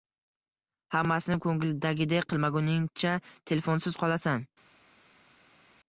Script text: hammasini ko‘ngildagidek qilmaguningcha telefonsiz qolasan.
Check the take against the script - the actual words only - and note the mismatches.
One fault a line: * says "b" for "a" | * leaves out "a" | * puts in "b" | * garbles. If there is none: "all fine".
all fine